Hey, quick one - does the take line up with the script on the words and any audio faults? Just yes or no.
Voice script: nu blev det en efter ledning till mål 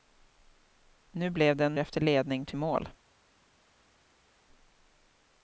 yes